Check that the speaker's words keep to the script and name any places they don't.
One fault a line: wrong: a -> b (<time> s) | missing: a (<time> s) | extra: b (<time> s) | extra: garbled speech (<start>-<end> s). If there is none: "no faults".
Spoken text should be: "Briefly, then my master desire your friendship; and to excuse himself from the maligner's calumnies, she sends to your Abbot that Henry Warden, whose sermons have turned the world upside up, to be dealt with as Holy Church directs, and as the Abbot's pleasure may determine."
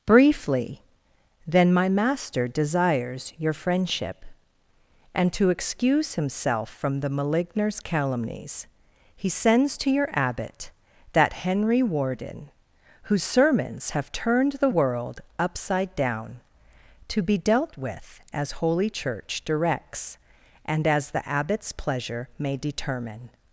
wrong: desire -> desires (2.5 s)
wrong: she -> he (9.2 s)
wrong: up -> down (16.0 s)